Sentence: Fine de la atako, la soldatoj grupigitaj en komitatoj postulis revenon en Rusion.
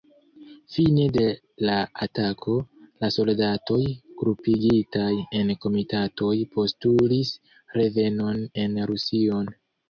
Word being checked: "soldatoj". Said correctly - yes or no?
yes